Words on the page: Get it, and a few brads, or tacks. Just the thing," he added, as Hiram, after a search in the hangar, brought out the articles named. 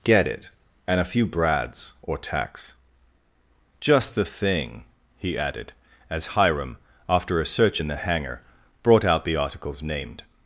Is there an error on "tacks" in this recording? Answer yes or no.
no